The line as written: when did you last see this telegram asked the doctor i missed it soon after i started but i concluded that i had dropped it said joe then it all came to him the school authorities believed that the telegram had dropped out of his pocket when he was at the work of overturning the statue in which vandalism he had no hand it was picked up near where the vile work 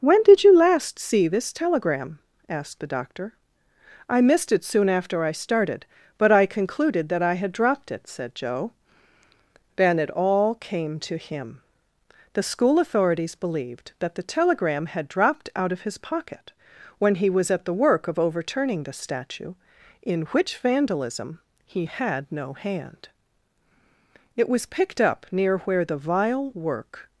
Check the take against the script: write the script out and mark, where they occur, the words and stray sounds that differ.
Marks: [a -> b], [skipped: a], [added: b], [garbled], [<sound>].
when did you last see this telegram asked the doctor i missed it soon after i started but i concluded that i had dropped it said joe then it all came to him the school authorities believed that the telegram had dropped out of his pocket when he was at the work of overturning the statue in which vandalism he had no hand it was picked up near where the vile work